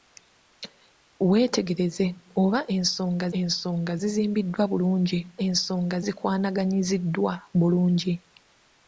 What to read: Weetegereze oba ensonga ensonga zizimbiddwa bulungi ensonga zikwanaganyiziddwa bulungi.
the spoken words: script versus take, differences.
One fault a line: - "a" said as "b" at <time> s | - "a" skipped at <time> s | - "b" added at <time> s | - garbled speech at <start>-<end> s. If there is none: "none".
none